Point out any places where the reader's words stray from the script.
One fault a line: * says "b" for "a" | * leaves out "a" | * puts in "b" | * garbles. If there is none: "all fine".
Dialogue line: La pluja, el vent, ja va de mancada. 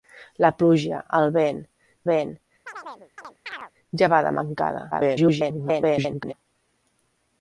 * puts in "vent"
* garbles